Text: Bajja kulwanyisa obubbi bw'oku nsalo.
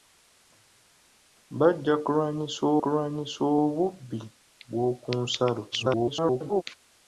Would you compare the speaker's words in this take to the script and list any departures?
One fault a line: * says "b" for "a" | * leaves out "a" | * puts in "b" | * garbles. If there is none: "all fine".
* puts in "kulwanyisa"
* garbles